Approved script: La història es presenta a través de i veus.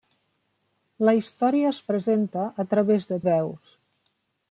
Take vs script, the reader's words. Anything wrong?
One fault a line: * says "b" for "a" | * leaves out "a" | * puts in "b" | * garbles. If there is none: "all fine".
all fine